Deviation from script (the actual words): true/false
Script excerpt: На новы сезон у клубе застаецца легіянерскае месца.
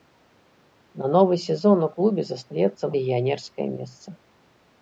false